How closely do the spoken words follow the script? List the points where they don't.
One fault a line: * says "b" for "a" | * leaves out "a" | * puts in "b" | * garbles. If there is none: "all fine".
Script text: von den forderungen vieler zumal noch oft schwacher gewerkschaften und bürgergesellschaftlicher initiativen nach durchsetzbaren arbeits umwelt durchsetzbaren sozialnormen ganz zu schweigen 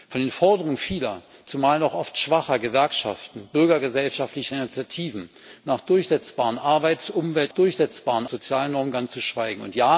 all fine